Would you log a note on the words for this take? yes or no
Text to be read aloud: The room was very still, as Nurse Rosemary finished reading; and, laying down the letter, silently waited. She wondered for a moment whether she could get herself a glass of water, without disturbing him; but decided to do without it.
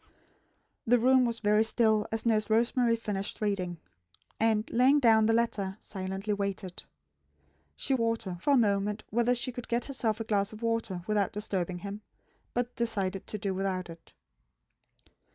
yes